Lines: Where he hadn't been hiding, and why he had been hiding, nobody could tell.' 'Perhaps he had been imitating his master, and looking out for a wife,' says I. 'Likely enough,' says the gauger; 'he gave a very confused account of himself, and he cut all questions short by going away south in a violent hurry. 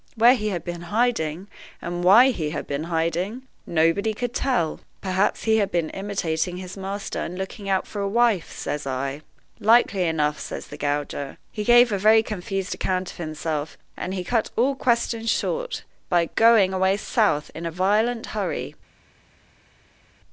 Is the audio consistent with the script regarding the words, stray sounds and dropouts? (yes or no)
no